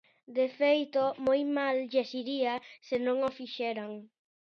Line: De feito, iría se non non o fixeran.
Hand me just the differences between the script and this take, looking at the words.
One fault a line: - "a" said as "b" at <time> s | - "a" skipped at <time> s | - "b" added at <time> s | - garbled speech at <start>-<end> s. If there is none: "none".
- "moi mal lles" added at 1.2 s
- "non" skipped at 3.2 s